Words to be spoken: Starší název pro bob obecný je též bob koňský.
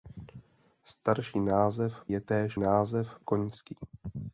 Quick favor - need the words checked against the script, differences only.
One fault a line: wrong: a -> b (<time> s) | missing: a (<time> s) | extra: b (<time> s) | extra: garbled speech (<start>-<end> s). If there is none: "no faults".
missing: pro bob obecný (2.0 s)
wrong: bob -> název (2.5 s)